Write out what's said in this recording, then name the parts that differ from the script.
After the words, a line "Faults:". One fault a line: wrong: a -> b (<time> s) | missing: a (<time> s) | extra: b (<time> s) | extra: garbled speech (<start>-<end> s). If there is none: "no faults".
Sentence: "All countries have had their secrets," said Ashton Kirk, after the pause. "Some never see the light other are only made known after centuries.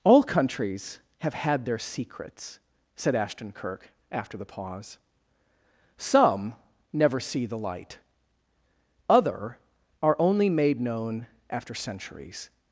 "All countries have had their secrets," said Ashton Kirk, after the pause. "Some never see the light other are only made known after centuries.
Faults:
no faults